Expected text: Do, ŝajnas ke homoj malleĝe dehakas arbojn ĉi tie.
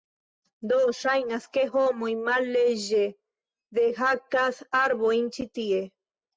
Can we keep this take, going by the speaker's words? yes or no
yes